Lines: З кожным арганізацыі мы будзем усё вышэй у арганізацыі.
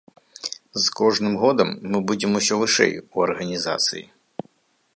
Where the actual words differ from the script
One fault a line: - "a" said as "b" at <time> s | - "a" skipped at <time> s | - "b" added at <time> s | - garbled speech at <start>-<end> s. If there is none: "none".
- "арганізацыі" said as "годам" at 1.4 s